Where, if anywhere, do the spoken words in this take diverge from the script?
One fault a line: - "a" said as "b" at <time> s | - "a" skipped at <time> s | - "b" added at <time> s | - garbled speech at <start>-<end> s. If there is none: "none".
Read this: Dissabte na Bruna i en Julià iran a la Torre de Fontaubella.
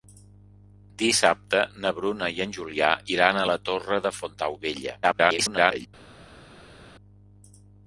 - garbled speech at 5.0-5.9 s